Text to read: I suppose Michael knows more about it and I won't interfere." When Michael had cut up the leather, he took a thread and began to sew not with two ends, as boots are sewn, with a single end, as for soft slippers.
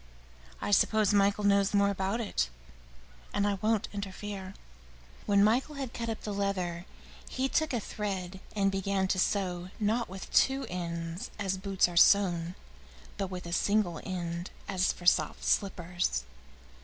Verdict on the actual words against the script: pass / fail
fail